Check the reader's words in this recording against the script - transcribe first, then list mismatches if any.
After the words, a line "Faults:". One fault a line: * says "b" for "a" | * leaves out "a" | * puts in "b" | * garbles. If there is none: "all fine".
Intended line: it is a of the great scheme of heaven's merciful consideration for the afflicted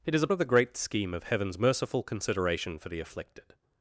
it is a of the great scheme of heaven's merciful consideration for the afflicted
Faults:
all fine